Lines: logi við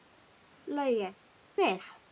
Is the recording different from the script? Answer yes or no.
no